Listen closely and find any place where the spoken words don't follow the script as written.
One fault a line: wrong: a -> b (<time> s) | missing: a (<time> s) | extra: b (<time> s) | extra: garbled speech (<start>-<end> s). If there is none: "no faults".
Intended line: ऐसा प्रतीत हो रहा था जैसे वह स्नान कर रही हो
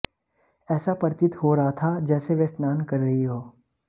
no faults